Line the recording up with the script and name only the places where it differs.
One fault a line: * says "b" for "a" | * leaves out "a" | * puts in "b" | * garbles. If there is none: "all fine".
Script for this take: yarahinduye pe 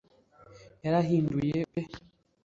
all fine